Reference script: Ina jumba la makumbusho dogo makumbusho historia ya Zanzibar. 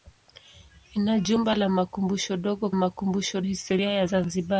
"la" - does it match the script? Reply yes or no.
yes